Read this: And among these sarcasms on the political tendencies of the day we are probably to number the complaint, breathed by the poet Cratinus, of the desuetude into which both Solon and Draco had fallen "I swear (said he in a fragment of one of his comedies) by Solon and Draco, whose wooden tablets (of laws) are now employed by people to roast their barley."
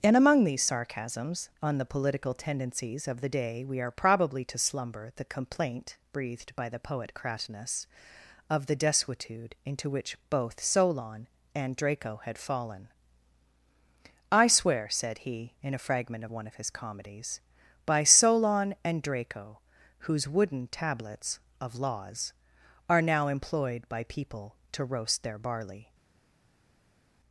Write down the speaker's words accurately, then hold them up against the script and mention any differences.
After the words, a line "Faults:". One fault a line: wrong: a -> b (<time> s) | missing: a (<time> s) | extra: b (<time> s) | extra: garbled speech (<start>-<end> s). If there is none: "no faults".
And among these sarcasms on the political tendencies of the day we are probably to slumber the complaint, breathed by the poet Cratinus, of the desuetude into which both Solon and Draco had fallen "I swear (said he in a fragment of one of his comedies) by Solon and Draco, whose wooden tablets (of laws) are now employed by people to roast their barley."
Faults:
wrong: number -> slumber (4.6 s)